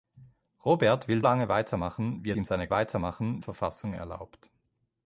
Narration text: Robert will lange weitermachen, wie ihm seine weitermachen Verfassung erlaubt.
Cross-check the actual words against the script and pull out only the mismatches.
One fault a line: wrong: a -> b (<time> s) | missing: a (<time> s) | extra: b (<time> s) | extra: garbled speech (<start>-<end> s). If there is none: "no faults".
no faults